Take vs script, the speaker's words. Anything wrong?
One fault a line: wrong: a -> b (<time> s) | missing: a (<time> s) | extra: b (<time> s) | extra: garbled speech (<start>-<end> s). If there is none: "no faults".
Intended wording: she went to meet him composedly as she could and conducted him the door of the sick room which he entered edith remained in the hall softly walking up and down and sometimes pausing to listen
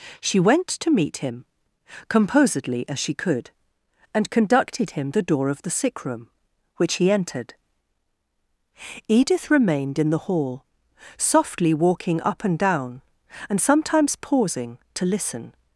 no faults